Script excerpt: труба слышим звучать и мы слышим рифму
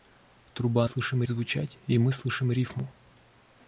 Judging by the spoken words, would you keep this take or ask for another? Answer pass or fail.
pass